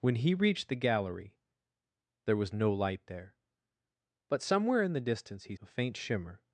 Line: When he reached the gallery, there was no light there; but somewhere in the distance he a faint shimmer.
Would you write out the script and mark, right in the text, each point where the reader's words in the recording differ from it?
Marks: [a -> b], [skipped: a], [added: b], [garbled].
When he reached the gallery, there was no light there; but somewhere in the distance he a faint shimmer.